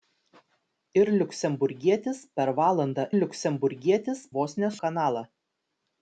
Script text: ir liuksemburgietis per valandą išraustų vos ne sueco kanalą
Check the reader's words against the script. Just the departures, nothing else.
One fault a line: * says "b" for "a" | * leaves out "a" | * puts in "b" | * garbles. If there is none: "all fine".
* says "liuksemburgietis" for "išraustų"
* leaves out "sueco"